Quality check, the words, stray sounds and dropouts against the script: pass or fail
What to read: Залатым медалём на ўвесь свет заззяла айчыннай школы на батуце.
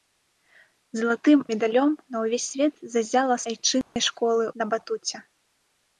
fail